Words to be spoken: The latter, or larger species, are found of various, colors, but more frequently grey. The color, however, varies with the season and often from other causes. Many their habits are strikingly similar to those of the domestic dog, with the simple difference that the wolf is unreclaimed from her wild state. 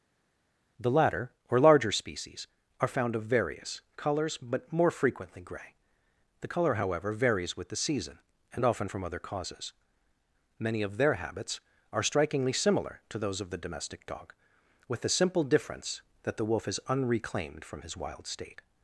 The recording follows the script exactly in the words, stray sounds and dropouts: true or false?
false